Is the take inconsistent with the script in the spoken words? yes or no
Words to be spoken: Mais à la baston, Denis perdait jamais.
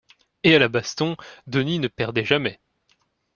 yes